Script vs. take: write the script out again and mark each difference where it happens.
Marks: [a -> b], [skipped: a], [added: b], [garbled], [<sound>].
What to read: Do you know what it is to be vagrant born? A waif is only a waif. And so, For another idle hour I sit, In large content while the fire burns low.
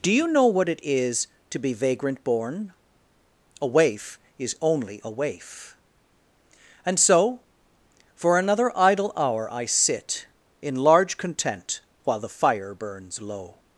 Do you know what it is to be vagrant born? A waif is only a waif. And so, For another idle hour I sit, In large content while the fire burns low.